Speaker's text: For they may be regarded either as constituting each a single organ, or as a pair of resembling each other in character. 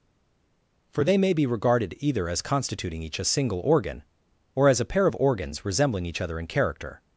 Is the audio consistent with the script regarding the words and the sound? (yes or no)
no